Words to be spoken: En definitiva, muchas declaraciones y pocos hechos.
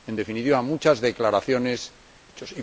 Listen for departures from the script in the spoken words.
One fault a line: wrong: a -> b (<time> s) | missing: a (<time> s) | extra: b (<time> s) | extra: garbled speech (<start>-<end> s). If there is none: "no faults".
missing: y pocos (1.9 s)